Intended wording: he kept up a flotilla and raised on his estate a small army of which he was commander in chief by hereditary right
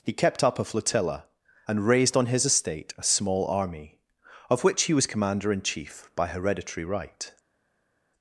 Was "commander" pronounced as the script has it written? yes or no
yes